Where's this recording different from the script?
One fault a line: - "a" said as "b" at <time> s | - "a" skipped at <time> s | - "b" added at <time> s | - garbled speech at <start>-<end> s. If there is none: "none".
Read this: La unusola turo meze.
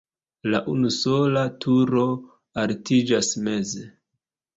- "altiĝas" added at 2.7 s